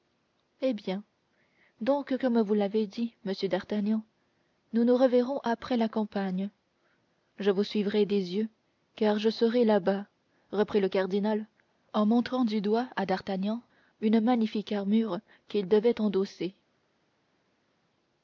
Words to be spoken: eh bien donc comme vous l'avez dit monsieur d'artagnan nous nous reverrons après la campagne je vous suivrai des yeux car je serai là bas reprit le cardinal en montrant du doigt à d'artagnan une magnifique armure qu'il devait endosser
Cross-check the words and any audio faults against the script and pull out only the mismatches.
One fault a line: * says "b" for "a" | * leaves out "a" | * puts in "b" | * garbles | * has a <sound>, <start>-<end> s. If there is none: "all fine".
all fine